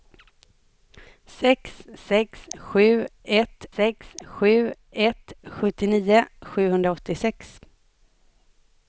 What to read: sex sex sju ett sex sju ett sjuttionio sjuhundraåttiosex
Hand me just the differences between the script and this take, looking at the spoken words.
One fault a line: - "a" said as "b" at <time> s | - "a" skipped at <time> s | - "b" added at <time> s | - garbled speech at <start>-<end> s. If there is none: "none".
none